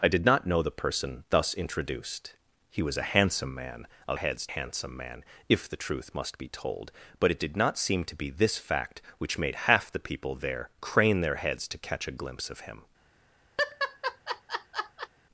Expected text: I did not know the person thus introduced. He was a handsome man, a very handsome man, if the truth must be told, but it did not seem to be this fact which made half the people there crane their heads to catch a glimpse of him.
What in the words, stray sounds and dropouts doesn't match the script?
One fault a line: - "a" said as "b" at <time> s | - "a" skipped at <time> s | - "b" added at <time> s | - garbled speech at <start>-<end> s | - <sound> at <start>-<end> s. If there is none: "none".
- "very" said as "heads" at 4.1 s
- laugh at 13.6-15.1 s